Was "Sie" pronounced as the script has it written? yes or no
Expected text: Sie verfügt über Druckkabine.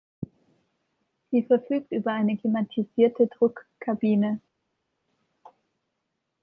yes